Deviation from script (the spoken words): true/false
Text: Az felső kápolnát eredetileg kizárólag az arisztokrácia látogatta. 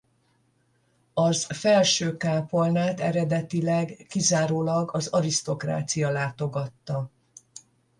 false